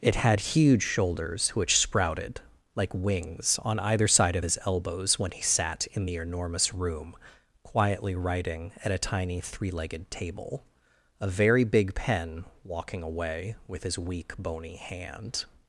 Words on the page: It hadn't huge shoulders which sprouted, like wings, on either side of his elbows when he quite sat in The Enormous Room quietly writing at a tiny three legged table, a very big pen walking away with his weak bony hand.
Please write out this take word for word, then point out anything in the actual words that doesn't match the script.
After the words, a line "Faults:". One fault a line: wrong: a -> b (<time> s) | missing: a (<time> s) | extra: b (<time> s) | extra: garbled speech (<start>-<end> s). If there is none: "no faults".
It had huge shoulders which sprouted, like wings, on either side of his elbows when he sat in The Enormous Room quietly writing at a tiny three legged table, a very big pen walking away with his weak bony hand.
Faults:
wrong: hadn't -> had (0.1 s)
missing: quite (5.4 s)